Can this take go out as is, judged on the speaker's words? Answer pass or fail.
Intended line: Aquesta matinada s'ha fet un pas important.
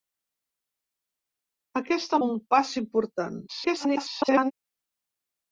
fail